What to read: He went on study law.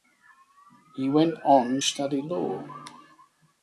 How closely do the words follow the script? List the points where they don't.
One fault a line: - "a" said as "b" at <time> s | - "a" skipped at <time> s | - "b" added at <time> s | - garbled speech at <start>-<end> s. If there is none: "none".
none